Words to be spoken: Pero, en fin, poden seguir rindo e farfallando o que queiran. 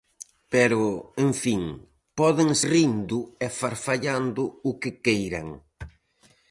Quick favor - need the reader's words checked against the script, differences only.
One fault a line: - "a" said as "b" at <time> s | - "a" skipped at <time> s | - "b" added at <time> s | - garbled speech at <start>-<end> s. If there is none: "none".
- "seguir" skipped at 2.5 s